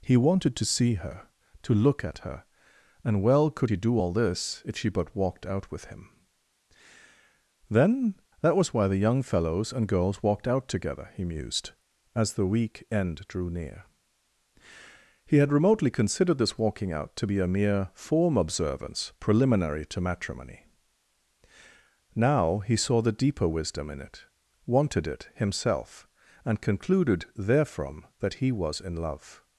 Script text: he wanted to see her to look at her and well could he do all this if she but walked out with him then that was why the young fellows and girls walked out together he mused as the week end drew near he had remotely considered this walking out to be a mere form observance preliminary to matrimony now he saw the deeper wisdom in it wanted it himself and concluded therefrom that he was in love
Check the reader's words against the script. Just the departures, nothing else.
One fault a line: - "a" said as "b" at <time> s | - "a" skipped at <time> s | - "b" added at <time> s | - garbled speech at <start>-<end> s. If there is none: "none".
none